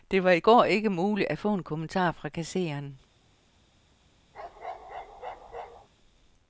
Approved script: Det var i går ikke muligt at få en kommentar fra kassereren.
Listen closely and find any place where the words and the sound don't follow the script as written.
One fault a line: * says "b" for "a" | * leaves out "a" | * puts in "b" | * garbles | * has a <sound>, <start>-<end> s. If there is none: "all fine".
* has a bark, 4.3-5.9 s